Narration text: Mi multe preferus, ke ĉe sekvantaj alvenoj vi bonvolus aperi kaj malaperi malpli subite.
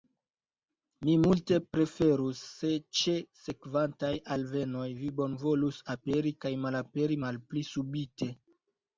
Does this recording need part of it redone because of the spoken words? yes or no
yes